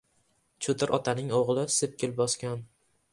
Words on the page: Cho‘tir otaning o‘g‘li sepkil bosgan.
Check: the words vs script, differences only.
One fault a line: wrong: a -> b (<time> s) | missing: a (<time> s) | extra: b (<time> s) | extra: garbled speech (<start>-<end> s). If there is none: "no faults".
no faults